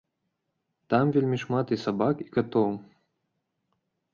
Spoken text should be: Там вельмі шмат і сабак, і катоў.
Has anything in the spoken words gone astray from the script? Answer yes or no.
no